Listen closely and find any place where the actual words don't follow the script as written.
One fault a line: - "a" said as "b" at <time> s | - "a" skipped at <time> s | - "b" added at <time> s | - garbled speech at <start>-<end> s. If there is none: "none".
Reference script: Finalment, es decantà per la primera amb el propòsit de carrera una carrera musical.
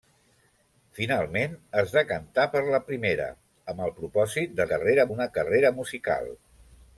none